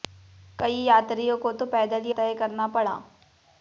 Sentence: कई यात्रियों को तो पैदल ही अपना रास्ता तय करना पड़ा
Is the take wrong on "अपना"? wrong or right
wrong